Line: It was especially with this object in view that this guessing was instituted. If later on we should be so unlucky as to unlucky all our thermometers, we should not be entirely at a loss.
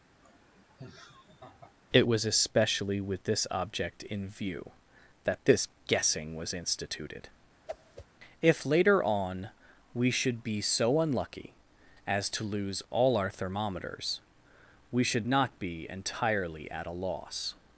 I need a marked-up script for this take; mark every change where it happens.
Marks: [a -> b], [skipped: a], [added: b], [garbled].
It was especially with this object in view that this guessing was instituted. If later on we should be so unlucky as to [unlucky -> lose] all our thermometers, we should not be entirely at a loss.